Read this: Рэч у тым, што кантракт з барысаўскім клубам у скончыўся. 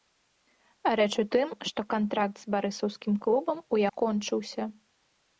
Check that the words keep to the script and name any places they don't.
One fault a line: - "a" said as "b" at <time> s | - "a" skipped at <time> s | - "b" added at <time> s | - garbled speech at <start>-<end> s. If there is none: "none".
none